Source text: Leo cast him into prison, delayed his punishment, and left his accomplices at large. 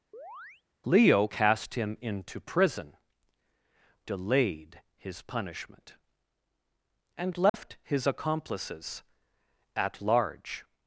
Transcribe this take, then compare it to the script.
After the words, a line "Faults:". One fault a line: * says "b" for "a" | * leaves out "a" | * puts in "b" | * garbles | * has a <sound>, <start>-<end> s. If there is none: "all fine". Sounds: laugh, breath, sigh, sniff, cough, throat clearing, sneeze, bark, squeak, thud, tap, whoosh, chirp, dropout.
Leo cast him into prison, delayed his punishment, and left his accomplices at large.
Faults:
* has a chirp, 0.1-0.6 s
* has a dropout, 7.5-7.5 s